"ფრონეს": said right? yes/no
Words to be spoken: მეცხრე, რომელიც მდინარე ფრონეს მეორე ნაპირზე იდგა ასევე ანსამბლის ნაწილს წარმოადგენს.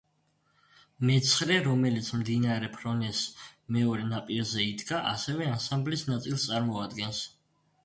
yes